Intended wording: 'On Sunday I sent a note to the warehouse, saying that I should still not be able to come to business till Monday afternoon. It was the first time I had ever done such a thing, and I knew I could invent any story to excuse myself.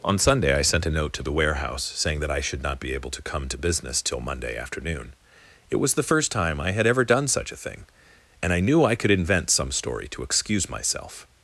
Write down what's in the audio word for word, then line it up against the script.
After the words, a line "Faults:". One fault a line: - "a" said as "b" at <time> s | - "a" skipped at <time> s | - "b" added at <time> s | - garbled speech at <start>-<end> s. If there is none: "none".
'On Sunday I sent a note to the warehouse, saying that I should not be able to come to business till Monday afternoon. It was the first time I had ever done such a thing, and I knew I could invent some story to excuse myself.
Faults:
- "still" skipped at 2.6 s
- "any" said as "some" at 9.5 s